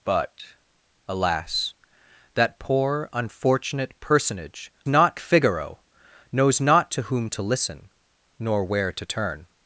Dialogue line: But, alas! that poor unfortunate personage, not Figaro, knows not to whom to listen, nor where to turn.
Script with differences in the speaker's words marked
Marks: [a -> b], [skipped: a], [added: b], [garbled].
But, alas! that poor unfortunate personage, not Figaro, knows not to whom to listen, nor where to turn.